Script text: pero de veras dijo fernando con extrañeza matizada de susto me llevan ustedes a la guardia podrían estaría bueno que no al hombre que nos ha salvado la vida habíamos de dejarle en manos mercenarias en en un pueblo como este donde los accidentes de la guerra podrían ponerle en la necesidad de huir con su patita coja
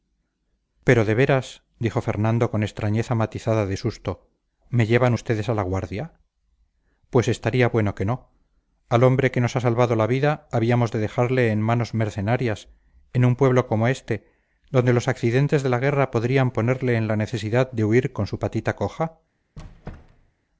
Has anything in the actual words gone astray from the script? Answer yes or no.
yes